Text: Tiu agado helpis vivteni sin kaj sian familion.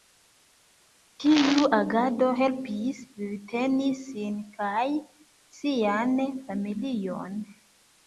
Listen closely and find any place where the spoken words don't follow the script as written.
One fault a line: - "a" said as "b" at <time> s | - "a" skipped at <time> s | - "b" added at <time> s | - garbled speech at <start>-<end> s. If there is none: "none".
none